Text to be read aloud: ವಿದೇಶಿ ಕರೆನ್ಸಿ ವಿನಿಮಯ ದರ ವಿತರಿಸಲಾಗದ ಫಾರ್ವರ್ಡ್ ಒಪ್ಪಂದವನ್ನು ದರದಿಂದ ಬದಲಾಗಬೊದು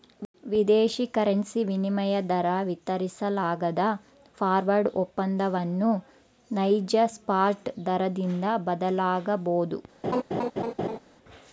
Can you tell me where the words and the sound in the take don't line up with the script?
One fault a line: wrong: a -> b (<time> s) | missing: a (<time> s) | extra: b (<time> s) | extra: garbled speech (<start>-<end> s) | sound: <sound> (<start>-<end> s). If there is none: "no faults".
extra: ನೈಜ ಸ್ಪಾಟ್ (6.5 s)
sound: laugh (10.0-11.0 s)